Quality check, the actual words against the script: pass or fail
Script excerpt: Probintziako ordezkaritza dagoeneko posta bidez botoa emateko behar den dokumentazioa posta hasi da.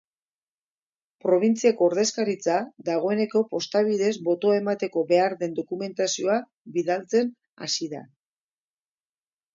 fail